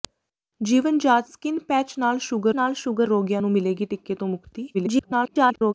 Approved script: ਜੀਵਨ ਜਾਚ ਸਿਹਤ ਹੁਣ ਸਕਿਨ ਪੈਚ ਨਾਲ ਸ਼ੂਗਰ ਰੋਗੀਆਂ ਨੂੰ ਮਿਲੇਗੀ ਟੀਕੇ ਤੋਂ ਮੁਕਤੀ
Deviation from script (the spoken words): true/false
true